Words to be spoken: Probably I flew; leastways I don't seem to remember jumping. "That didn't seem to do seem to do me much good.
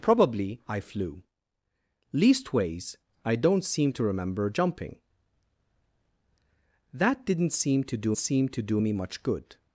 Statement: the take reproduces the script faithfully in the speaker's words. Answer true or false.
true